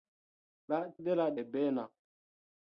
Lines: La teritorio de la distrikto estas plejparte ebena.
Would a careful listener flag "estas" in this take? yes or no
yes